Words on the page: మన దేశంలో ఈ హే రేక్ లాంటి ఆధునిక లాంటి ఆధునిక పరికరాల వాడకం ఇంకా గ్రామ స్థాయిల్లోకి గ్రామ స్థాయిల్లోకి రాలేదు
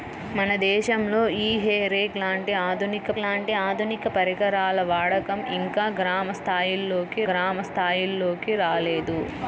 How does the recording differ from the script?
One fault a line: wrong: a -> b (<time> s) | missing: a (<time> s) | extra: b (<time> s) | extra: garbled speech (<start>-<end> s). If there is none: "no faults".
no faults